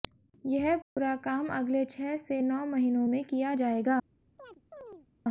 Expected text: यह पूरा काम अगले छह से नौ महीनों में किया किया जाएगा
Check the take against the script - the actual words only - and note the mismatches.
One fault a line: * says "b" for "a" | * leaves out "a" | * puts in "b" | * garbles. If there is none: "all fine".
* leaves out "किया"